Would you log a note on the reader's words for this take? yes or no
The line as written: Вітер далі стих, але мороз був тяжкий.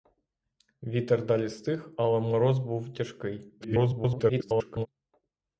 yes